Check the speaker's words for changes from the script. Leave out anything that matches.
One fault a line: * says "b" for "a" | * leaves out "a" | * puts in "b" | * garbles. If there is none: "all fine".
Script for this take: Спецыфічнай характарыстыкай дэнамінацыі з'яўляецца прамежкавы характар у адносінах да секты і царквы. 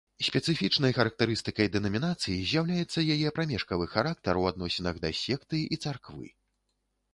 * puts in "яе"